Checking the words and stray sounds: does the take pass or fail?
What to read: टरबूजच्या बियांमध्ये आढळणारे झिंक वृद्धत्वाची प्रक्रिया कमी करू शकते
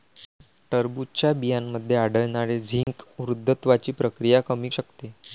fail